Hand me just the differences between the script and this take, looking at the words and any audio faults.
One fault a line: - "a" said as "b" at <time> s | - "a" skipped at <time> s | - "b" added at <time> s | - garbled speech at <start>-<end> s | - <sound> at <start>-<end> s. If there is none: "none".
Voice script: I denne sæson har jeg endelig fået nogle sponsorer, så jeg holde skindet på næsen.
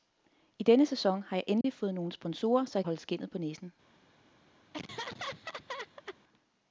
- dropout at 1.6-1.6 s
- laugh at 4.7-6.2 s